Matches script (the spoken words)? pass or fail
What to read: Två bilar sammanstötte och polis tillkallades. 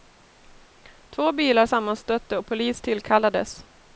pass